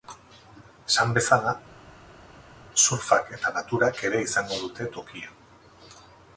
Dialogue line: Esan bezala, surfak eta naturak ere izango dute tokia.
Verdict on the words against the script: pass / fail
pass